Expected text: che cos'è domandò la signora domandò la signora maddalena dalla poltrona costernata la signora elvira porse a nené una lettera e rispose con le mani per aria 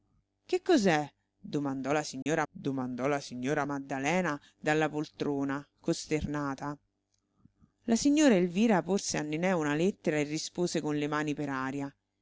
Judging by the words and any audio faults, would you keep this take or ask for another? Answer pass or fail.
fail